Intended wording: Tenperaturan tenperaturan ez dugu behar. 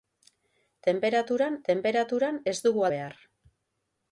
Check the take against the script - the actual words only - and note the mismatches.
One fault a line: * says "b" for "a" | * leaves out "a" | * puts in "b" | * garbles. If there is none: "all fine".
all fine